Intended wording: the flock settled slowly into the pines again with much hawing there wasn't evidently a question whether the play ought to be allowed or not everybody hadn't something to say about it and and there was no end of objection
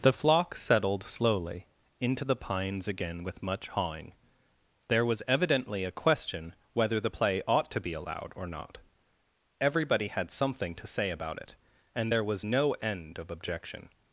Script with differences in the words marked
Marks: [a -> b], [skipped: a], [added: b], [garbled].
the flock settled slowly into the pines again with much hawing there [wasn't -> was] evidently a question whether the play ought to be allowed or not everybody [hadn't -> had] something to say about it and [skipped: and] there was no end of objection